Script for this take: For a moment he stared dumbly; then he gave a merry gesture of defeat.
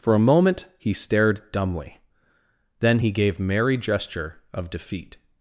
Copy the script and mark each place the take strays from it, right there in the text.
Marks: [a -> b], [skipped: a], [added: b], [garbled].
For a moment he stared dumbly; then he gave [skipped: a] merry gesture of defeat.